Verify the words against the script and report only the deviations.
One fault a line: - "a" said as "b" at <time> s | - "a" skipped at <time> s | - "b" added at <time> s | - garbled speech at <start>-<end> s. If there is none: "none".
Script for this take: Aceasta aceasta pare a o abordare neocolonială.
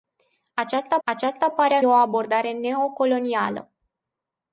none